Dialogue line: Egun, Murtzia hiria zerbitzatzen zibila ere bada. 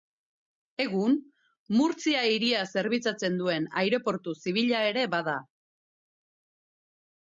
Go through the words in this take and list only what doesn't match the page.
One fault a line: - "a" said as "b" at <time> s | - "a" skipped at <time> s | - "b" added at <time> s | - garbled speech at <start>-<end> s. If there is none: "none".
- "duen aireportu" added at 3.4 s